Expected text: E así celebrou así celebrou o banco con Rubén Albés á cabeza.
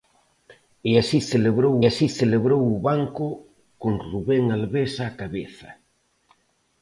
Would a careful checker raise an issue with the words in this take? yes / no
no